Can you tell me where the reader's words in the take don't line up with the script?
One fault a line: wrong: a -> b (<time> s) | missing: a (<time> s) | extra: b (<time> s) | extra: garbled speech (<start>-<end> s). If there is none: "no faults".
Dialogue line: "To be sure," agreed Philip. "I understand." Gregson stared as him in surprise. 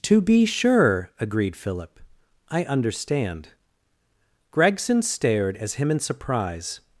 no faults